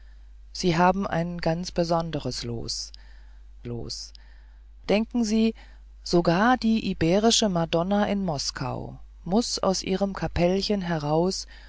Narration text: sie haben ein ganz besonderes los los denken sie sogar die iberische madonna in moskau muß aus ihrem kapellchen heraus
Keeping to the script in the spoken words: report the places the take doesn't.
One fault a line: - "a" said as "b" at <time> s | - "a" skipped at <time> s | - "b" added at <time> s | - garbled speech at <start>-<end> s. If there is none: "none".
none